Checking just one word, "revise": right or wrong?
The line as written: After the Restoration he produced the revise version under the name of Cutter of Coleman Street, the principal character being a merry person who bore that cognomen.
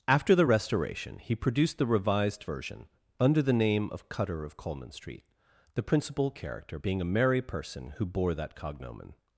wrong